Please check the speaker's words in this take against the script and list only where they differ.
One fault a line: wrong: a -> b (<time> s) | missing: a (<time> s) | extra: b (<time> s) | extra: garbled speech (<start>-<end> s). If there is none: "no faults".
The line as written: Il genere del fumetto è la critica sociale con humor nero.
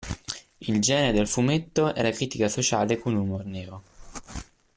no faults